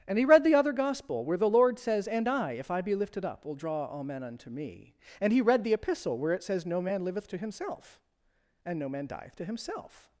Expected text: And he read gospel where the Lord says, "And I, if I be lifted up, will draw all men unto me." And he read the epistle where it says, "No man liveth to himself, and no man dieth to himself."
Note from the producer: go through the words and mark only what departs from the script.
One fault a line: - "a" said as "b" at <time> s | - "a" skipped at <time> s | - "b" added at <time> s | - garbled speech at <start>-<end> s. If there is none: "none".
- "the other" added at 0.4 s